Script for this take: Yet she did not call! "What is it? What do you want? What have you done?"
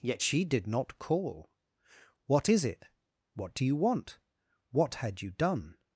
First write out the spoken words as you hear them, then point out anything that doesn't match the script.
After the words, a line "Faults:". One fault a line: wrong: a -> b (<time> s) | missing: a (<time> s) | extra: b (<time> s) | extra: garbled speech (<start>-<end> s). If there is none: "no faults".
Yet she did not call! "What is it? What do you want? What had you done?"
Faults:
wrong: have -> had (4.9 s)